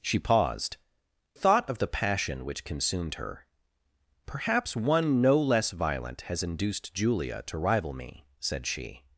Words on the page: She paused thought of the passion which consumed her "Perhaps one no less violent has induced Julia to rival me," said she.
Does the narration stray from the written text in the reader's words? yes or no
no